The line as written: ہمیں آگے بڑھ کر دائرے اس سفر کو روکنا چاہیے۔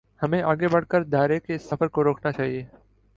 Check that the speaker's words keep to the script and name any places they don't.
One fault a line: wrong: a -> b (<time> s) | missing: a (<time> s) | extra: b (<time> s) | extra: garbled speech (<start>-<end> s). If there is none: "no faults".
extra: کے (1.4 s)